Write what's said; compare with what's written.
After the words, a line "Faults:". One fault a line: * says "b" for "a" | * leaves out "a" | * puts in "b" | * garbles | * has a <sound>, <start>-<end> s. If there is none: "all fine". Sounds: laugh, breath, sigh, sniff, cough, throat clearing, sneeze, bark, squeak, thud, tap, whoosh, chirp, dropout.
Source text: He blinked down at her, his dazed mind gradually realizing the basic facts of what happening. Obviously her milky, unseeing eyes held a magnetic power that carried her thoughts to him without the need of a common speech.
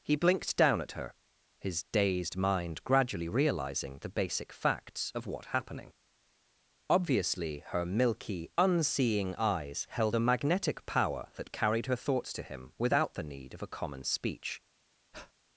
He blinked down at her, his dazed mind gradually realizing the basic facts of what happening. Obviously her milky, unseeing eyes held a magnetic power that carried her thoughts to him without the need of a common speech.
Faults:
* has a breath, 15.1-15.3 s